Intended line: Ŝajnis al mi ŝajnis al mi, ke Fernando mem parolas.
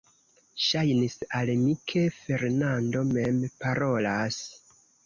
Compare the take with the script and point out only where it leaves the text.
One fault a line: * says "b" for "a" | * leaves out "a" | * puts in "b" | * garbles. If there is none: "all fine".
* leaves out "ŝajnis al mi"